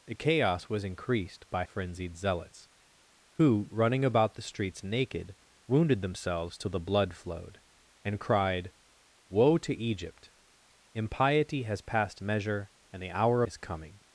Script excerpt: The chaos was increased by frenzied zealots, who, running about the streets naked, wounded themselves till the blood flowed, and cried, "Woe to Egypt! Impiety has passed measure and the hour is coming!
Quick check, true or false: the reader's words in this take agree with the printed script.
true